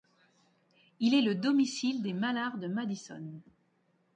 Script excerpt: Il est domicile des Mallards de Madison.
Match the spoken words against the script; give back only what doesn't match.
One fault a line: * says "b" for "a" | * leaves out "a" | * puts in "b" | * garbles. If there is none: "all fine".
* puts in "le"